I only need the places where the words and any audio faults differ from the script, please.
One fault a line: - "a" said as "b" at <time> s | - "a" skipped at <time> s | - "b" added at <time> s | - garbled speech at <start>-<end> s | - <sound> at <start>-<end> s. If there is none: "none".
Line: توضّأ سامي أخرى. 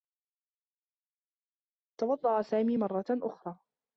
- "مرّة" added at 2.8 s